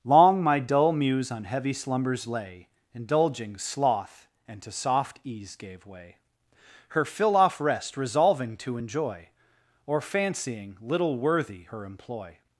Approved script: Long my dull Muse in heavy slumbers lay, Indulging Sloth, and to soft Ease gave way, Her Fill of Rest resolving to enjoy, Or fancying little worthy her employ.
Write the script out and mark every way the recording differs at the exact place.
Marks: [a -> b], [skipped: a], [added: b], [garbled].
Long my dull Muse [in -> on] heavy slumbers lay, Indulging Sloth, and to soft Ease gave way, Her Fill [of -> off] Rest resolving to enjoy, Or fancying little worthy her employ.